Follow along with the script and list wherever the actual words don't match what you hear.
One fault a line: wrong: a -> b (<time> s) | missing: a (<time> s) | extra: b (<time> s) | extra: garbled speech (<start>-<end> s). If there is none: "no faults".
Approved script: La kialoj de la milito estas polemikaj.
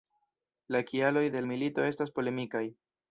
missing: la (1.4 s)